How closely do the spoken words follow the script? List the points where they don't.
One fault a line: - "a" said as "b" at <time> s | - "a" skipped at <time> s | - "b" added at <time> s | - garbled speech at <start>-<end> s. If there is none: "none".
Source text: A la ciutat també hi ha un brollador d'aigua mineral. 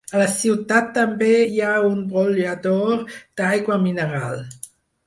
none